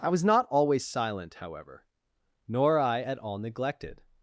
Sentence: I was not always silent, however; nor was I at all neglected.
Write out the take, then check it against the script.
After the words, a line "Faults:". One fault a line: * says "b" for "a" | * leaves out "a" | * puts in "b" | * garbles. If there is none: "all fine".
I was not always silent, however; nor I at all neglected.
Faults:
* leaves out "was"